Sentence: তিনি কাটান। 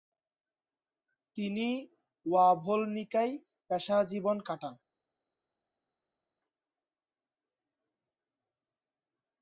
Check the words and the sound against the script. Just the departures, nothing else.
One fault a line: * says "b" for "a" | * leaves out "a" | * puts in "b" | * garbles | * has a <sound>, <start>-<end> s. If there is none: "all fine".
* puts in "ওয়াভোলনিকায় পেশাজীবন"